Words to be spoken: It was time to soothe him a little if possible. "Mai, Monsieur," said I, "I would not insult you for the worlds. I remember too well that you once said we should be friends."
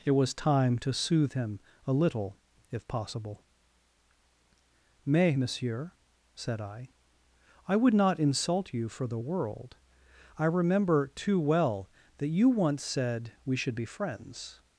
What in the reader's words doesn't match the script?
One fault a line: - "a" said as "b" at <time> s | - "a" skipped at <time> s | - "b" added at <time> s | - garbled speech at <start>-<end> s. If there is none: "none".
- "Mai" said as "Mais" at 5.0 s
- "worlds" said as "world" at 9.2 s